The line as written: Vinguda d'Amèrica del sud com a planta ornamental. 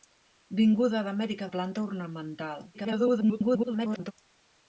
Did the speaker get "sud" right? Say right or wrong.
wrong